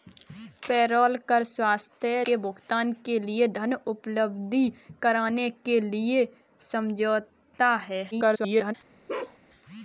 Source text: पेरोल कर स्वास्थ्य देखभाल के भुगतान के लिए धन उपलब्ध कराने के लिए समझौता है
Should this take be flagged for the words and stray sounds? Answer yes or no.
yes